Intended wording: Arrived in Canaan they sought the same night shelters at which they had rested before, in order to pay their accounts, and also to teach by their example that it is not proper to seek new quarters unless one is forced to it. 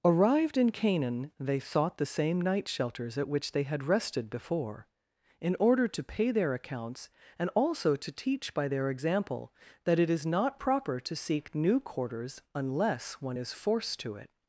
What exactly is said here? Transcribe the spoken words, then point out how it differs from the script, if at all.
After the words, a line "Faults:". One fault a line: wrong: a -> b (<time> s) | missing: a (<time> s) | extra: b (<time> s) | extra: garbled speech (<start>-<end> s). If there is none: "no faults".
Arrived in Canaan they sought the same night shelters at which they had rested before, in order to pay their accounts, and also to teach by their example that it is not proper to seek new quarters unless one is forced to it.
Faults:
no faults